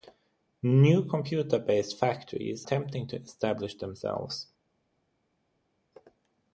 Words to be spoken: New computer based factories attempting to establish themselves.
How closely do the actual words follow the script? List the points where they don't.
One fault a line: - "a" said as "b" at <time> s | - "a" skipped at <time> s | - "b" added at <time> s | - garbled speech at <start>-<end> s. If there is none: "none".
none